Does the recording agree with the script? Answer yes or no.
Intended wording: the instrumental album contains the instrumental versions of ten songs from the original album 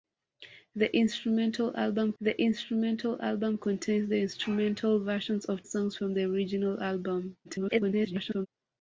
no